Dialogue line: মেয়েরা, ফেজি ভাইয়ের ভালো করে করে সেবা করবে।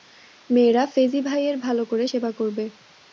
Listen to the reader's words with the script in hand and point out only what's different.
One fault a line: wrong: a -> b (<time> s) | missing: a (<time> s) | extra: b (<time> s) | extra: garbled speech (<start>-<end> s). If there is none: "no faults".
missing: করে (2.0 s)